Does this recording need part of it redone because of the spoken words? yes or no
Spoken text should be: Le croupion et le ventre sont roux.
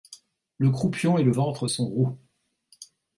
no